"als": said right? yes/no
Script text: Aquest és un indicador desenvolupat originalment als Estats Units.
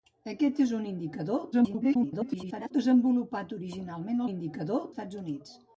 no